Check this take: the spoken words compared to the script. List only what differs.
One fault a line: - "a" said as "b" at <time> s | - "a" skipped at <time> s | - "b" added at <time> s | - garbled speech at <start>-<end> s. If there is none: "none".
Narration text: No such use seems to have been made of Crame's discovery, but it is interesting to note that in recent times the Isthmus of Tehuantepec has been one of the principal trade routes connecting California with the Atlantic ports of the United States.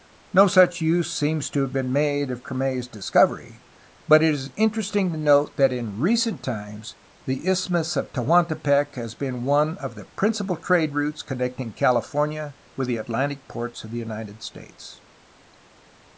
none